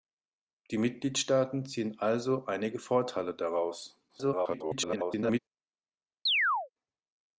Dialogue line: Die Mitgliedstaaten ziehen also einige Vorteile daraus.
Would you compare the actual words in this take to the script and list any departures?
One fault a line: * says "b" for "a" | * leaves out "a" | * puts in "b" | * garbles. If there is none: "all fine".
* garbles